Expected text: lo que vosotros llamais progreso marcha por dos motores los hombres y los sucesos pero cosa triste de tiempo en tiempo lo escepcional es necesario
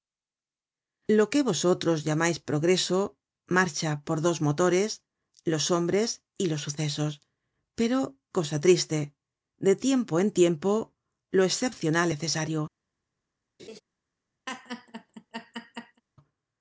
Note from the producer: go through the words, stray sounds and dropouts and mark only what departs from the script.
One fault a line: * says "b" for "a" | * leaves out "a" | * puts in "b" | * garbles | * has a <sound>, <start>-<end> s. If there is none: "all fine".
* leaves out "es"
* has a laugh, 13.6-13.8 s
* has a laugh, 14.5-16.0 s